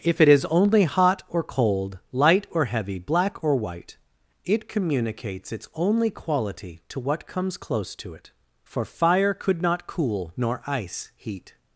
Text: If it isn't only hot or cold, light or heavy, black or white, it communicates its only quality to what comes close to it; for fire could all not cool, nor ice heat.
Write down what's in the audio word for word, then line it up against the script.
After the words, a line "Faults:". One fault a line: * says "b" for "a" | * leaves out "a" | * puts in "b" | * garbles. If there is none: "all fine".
If it is only hot or cold, light or heavy, black or white, it communicates its only quality to what comes close to it; for fire could not cool, nor ice heat.
Faults:
* says "is" for "isn't"
* leaves out "all"